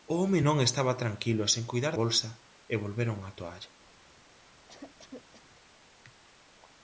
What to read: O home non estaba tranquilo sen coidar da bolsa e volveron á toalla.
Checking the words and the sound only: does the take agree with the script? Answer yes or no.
no